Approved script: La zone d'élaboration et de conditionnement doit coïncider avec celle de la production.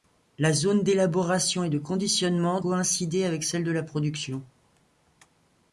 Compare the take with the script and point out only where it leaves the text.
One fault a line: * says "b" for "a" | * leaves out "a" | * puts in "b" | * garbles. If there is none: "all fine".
* leaves out "doit"